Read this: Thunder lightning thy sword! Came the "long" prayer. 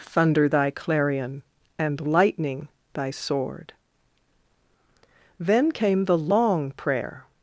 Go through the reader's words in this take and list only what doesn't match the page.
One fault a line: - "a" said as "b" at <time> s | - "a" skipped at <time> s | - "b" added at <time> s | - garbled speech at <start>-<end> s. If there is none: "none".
- "thy clarion and" added at 0.5 s
- "Then" added at 5.4 s